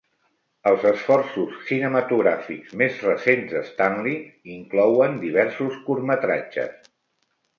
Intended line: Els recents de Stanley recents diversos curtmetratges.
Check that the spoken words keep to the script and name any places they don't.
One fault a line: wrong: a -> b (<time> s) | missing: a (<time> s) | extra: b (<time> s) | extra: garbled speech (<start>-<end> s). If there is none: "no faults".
extra: esforços cinematogràfics més (0.9 s)
wrong: recents -> inclouen (4.5 s)